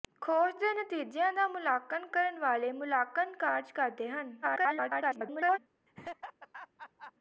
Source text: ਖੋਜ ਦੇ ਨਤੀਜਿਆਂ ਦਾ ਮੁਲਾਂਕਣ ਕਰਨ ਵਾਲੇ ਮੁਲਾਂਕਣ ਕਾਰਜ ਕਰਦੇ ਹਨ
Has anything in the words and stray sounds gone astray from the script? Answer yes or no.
yes